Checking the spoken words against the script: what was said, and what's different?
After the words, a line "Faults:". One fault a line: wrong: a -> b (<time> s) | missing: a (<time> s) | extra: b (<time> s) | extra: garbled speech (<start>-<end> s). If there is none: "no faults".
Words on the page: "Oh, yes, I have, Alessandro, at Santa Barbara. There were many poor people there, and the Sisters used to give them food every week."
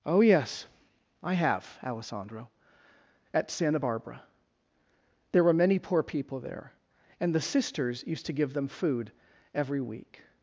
"Oh, yes, I have, Alessandro, at Santa Barbara. There were many poor people there, and the Sisters used to give them food every week."
Faults:
no faults